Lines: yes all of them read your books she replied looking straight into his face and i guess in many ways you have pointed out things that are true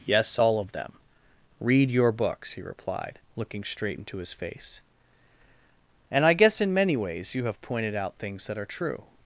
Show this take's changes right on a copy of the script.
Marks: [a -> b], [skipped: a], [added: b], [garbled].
yes all of them read your books [she -> he] replied looking straight into his face and i guess in many ways you have pointed out things that are true